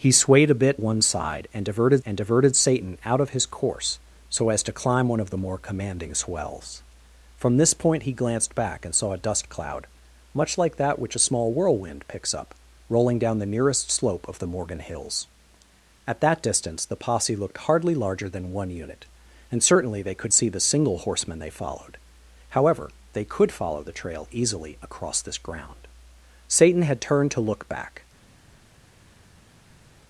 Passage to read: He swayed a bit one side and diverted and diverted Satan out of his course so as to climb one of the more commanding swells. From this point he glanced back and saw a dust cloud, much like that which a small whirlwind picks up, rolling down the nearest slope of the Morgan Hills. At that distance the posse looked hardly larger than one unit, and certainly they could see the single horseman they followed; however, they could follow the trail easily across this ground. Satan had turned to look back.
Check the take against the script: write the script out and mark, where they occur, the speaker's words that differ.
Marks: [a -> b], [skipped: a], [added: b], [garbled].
He swayed a bit one side and diverted and diverted Satan out of his course so as to climb one of the more commanding swells. From this point he glanced back and saw a dust cloud, much like that which a small whirlwind picks up, rolling down the nearest slope of the Morgan Hills. At that distance the posse looked hardly larger than one unit, and certainly they could see the single horseman they followed; however, they could follow the trail easily across this ground. Satan had turned to look back.